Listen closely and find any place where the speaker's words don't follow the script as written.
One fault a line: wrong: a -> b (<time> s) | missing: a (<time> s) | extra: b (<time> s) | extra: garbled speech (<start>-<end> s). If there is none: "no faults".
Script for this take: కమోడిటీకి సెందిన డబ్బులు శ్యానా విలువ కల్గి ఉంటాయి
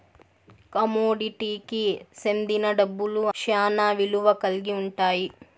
no faults